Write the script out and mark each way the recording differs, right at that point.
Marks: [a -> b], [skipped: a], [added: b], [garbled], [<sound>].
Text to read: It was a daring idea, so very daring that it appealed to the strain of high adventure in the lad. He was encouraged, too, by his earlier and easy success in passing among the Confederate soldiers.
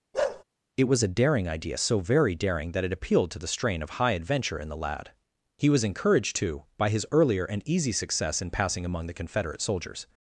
[bark] It was a daring idea, so very daring that it appealed to the strain of high adventure in the lad. He was encouraged, too, by his earlier and easy success in passing among the Confederate soldiers.